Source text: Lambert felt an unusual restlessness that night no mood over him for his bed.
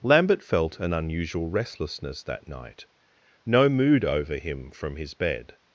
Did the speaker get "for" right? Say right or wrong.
wrong